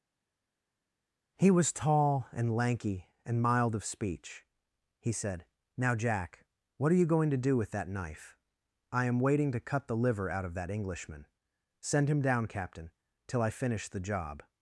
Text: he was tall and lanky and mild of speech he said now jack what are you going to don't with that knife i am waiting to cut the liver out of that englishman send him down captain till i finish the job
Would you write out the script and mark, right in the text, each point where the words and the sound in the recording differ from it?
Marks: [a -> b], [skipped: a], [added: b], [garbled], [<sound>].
he was tall and lanky and mild of speech he said now jack what are you going to [don't -> do] with that knife i am waiting to cut the liver out of that englishman send him down captain till i finish the job